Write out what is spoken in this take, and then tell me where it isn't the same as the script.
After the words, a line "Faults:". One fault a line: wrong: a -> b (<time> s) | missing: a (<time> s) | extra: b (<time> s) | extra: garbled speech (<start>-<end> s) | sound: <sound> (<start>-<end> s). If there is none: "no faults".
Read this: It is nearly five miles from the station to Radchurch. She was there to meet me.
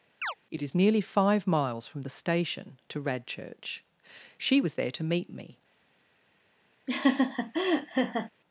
It is nearly five miles from the station to Radchurch. She was there to meet me.
Faults:
sound: chirp (0.2-0.3 s)
sound: laugh (6.9-8.3 s)